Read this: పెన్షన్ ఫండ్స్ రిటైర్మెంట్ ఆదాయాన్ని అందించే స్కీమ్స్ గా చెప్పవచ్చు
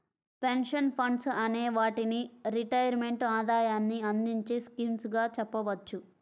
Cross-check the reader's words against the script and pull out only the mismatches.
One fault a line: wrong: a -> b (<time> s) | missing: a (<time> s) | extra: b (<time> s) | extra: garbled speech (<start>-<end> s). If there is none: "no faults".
extra: అనే వాటిని (1.4 s)